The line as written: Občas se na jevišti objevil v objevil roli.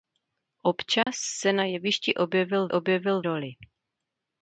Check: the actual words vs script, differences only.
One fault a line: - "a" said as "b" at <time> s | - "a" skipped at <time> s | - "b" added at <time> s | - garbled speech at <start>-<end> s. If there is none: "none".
none